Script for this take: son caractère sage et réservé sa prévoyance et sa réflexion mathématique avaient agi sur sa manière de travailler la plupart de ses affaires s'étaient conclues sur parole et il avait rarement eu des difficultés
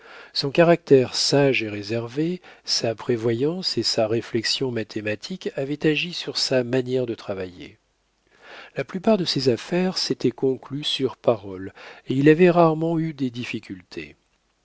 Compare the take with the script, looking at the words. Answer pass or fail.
pass